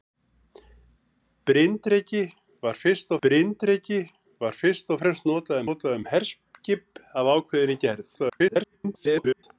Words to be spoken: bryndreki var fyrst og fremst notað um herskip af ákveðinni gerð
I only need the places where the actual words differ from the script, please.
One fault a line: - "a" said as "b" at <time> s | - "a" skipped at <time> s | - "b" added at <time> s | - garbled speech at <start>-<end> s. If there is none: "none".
- "bryndreki var fyrst" added at 3.2 s
- "notað" added at 5.6 s
- garbled speech at 8.2-9.4 s